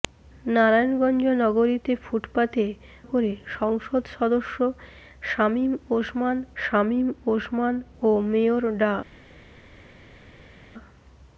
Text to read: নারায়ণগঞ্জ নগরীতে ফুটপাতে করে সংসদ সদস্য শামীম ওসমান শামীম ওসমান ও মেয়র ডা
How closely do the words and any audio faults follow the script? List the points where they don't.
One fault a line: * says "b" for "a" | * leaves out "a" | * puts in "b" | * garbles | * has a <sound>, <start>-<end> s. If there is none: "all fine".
all fine